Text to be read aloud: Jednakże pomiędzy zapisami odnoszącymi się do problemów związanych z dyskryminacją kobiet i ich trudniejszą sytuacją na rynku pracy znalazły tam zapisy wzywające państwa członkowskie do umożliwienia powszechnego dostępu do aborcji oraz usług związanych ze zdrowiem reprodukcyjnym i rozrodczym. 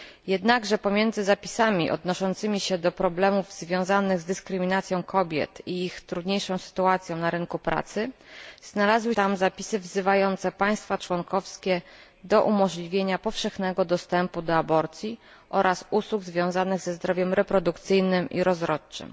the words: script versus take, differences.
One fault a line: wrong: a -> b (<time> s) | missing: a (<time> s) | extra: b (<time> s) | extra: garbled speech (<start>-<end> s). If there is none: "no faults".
no faults